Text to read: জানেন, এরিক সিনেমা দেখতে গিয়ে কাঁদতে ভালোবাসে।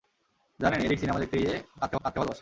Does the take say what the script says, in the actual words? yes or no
no